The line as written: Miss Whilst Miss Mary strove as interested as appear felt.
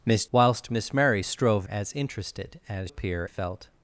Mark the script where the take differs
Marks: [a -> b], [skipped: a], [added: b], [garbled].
Miss Whilst Miss Mary strove as interested as appear felt.